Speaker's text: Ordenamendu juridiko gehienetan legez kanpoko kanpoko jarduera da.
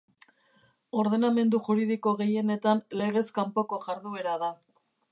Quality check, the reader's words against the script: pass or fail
fail